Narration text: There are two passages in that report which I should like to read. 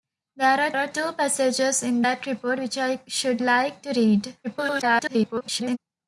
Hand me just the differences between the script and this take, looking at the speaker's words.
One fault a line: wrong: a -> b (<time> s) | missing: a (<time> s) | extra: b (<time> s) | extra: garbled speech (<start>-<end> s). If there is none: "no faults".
extra: are (0.8 s)
extra: garbled speech (4.4-5.8 s)